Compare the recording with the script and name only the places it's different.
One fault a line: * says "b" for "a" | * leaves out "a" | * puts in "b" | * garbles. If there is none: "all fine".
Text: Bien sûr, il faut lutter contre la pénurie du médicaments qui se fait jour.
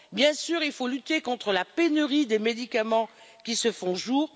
* says "des" for "du"